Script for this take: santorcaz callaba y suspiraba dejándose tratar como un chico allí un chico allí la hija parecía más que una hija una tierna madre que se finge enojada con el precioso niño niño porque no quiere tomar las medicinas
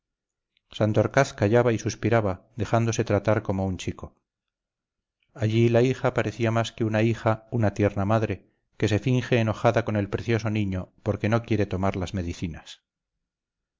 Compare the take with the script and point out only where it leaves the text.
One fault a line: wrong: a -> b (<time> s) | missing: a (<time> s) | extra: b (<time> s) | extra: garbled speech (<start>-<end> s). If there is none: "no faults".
missing: un chico allí (5.7 s)
missing: niño (10.9 s)